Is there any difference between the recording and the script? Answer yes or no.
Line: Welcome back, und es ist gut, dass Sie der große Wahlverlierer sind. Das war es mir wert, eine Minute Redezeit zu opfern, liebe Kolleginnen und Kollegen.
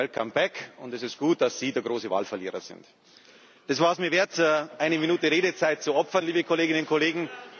no